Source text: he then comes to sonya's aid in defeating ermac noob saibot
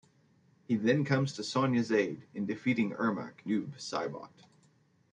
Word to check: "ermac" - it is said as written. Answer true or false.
true